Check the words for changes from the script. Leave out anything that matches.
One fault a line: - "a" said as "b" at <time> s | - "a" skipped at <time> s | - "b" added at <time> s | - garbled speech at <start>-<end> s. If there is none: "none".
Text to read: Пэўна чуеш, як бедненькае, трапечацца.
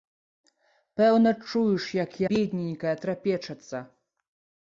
none